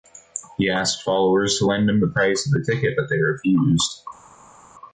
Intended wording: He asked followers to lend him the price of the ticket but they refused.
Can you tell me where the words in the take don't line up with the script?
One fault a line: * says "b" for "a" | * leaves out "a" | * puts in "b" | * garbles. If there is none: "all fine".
all fine